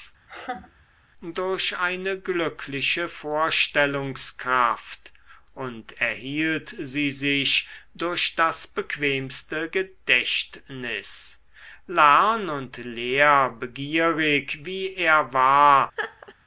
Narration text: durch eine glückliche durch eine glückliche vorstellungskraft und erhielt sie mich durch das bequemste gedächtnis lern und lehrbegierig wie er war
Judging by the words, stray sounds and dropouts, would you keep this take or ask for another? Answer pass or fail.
fail